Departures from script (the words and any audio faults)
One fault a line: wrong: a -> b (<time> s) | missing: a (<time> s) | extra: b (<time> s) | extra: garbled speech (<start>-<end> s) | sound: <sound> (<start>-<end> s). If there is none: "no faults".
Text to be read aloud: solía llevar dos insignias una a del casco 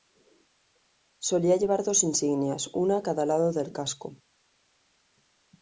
extra: cada lado (3.0 s)